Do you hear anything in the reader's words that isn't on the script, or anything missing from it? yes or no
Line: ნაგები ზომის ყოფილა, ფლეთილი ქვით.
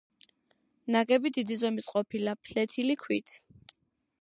yes